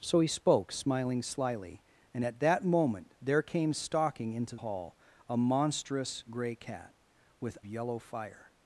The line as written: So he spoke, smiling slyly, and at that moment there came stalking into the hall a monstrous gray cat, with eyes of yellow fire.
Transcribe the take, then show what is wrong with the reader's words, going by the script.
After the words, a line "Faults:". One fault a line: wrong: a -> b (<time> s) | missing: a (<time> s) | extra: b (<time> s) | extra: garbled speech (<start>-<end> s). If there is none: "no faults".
So he spoke, smiling slyly, and at that moment there came stalking into hall a monstrous gray cat, with yellow fire.
Faults:
missing: the (4.6 s)
missing: eyes of (7.6 s)